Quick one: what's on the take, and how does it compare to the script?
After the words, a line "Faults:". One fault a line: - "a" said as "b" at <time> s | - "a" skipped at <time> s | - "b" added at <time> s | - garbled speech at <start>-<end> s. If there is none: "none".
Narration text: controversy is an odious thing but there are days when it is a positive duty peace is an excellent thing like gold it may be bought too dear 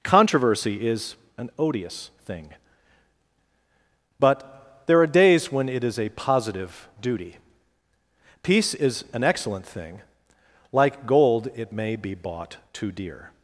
controversy is an odious thing but there are days when it is a positive duty peace is an excellent thing like gold it may be bought too dear
Faults:
none